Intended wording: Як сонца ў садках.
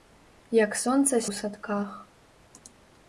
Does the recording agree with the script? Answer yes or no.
yes